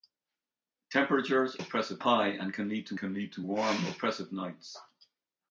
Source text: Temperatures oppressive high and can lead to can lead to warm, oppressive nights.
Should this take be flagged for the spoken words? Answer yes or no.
no